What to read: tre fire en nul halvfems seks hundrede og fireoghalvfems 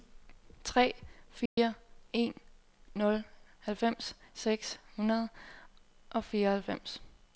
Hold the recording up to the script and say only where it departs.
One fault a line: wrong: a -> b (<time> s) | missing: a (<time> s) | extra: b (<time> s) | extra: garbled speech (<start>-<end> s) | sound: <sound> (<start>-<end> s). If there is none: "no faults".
sound: dropout (1.5-1.6 s)